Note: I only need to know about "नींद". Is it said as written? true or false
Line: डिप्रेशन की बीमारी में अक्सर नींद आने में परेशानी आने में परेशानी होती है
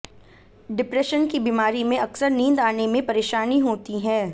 true